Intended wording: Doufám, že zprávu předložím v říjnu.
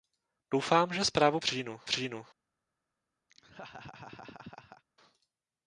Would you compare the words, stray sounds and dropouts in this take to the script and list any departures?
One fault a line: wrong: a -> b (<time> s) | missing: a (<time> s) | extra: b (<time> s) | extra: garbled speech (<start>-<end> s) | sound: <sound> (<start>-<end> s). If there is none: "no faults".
wrong: předložím -> říjnu (1.4 s)
sound: laugh (3.3-4.8 s)